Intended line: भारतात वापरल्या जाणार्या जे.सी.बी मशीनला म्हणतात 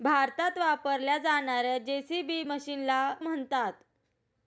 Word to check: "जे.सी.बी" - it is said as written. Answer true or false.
true